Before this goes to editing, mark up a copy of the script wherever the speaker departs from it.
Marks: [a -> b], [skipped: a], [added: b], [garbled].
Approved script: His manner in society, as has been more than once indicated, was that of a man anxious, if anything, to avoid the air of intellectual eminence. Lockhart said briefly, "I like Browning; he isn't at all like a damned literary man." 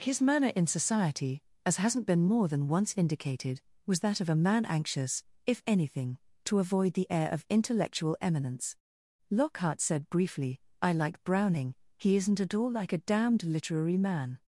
His manner in society, as [has -> hasn't] been more than once indicated, was that of a man anxious, if anything, to avoid the air of intellectual eminence. Lockhart said briefly, "I like Browning; he isn't at all like a damned literary man."